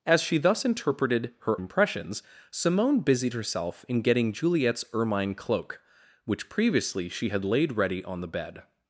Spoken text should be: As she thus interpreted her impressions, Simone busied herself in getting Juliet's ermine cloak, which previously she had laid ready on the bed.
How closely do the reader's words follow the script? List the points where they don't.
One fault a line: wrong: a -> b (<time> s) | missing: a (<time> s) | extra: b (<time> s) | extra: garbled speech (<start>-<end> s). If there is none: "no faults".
no faults